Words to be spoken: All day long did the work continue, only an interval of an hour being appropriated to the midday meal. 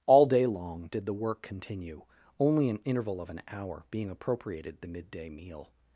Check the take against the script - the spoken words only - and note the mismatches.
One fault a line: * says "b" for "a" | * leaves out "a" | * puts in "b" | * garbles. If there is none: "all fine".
* leaves out "to"